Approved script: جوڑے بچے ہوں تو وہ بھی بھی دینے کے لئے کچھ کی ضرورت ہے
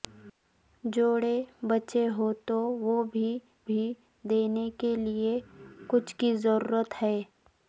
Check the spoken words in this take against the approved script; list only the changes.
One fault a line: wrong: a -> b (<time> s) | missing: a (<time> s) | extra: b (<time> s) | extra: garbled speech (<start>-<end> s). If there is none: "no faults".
no faults